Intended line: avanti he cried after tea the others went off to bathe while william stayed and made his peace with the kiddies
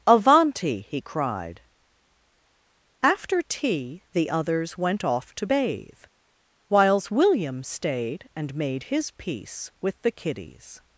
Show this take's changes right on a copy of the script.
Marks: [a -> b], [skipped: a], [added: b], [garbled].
avanti he cried after tea the others went off to bathe [while -> whiles] william stayed and made his peace with the kiddies